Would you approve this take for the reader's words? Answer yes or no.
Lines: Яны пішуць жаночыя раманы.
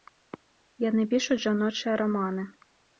yes